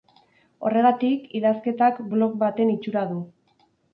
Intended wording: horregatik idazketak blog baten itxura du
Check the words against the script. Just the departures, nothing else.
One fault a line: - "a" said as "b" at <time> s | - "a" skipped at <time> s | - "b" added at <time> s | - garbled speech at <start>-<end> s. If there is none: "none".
none